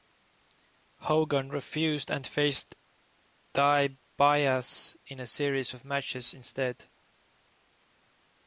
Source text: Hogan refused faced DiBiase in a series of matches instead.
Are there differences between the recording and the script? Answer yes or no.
yes